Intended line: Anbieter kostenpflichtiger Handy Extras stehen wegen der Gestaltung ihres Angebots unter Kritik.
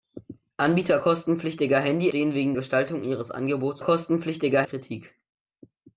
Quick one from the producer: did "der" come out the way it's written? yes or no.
no